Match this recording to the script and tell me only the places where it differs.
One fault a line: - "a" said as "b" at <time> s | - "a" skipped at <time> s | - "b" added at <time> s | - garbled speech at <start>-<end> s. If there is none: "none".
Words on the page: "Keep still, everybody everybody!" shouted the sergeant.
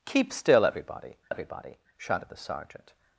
none